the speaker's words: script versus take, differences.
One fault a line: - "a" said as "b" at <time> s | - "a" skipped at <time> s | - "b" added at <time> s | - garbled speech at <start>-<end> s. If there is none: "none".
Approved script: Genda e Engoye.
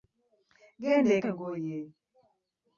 none